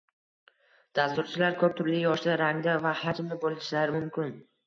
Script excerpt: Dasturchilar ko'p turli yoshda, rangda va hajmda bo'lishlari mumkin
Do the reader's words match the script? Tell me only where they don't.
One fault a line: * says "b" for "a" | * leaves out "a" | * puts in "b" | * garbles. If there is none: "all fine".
all fine